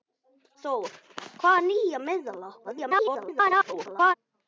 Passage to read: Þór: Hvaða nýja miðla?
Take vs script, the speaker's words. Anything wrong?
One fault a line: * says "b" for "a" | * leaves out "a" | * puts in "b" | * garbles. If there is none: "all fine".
* garbles